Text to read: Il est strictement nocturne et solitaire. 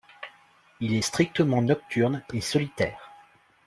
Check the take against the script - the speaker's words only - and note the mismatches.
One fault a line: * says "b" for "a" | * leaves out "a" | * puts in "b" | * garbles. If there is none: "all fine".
all fine